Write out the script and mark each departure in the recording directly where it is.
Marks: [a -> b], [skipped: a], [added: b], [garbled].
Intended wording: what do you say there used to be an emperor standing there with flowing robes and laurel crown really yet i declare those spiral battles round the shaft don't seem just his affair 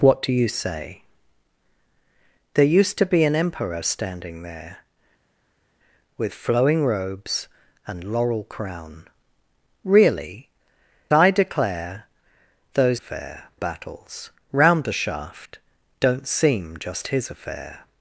what do you say there used to be an emperor standing there with flowing robes and laurel crown really [skipped: yet] i declare those [spiral -> affair] battles round the shaft don't seem just his affair